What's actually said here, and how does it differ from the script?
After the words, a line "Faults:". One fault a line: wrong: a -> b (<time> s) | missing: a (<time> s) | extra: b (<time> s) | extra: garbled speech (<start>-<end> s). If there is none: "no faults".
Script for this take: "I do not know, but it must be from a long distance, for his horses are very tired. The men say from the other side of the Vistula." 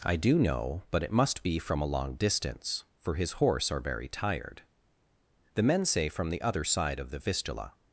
"I do know, but it must be from a long distance, for his horse are very tired. The men say from the other side of the Vistula."
Faults:
missing: not (0.4 s)
wrong: horses -> horse (3.3 s)